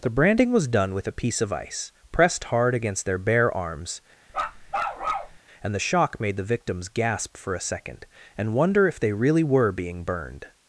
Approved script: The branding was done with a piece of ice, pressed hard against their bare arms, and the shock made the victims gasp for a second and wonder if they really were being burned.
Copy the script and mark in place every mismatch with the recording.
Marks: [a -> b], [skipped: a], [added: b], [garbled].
The branding was done with a piece of ice, pressed hard against their bare arms, and the shock made the victims gasp for a second and wonder if they really were being burned.